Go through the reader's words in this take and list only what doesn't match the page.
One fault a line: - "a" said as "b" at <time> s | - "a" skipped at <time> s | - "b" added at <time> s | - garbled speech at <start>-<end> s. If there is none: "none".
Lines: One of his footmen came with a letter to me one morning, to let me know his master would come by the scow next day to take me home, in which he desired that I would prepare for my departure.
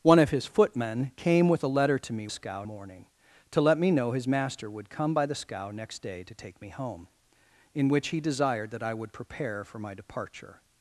- "one" said as "scow" at 2.3 s